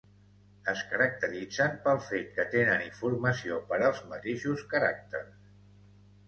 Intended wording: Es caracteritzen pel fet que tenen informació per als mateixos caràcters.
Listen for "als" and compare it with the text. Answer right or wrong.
right